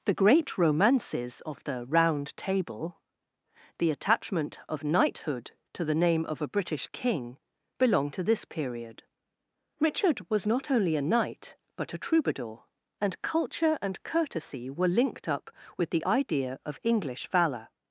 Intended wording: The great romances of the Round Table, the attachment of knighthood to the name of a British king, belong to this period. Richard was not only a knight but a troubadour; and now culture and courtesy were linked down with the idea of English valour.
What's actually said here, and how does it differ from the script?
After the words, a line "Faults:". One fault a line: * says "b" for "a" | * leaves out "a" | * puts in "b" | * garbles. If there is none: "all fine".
The great romances of the Round Table, the attachment of knighthood to the name of a British king, belong to this period. Richard was not only a knight but a troubadour; and culture and courtesy were linked up with the idea of English valour.
Faults:
* leaves out "now"
* says "up" for "down"